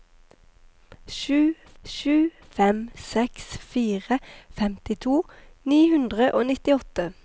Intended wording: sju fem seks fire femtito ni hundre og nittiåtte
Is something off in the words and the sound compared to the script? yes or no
yes